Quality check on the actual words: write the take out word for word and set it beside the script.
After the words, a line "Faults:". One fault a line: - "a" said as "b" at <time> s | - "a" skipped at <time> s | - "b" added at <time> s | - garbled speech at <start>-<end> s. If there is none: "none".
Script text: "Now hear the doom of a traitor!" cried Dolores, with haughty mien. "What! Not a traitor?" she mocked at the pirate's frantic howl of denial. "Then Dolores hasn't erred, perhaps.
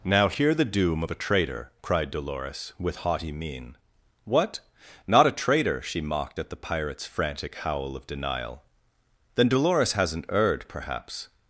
"Now hear the doom of a traitor!" cried Dolores, with haughty mien. "What! Not a traitor?" she mocked at the pirate's frantic howl of denial. "Then Dolores hasn't erred, perhaps.
Faults:
none